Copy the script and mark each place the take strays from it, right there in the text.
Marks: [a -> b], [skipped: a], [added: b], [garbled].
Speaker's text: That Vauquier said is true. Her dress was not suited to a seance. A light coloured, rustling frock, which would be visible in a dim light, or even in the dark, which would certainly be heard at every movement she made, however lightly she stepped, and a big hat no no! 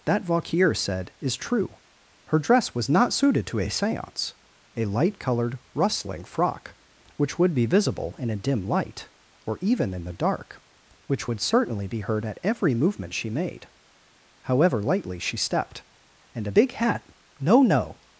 That Vauquier said is true. Her dress was not suited to a seance. A light coloured, rustling frock, which would be visible in a dim light, or even in the dark, which would certainly be heard at every movement she made, however lightly she stepped, and a big hat no no!